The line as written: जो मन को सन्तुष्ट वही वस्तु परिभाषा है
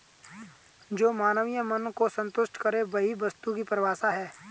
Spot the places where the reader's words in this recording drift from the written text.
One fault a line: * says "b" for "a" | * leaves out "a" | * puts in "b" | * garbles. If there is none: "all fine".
* puts in "मानवीय"
* puts in "करे"
* puts in "की"